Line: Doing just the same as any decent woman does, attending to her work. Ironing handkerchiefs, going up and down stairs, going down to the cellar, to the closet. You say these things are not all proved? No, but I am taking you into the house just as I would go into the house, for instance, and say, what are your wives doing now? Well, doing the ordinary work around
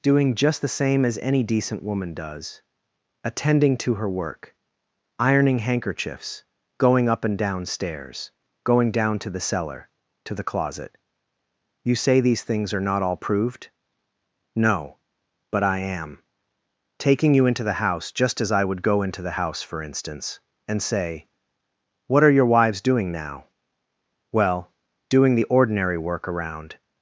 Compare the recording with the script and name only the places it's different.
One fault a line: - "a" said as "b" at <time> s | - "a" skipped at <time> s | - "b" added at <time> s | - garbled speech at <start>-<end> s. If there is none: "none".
none